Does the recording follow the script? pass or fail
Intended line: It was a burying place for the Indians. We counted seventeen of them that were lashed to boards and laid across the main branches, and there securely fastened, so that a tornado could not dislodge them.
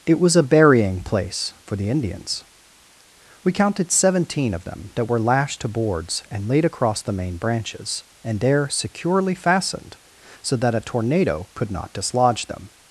pass